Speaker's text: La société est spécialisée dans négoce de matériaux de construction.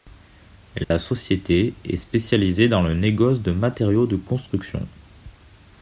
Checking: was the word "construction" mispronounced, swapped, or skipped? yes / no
no